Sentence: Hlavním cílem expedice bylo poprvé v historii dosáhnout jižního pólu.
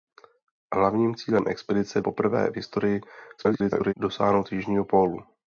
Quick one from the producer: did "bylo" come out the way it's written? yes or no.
no